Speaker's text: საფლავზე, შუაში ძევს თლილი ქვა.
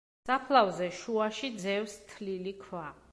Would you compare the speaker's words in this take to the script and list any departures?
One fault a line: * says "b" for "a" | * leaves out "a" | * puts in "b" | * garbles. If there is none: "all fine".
all fine